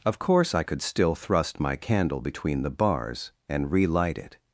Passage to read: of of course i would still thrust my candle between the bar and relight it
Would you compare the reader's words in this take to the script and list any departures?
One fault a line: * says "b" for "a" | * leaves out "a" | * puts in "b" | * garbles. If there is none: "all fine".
* leaves out "of"
* says "could" for "would"
* says "bars" for "bar"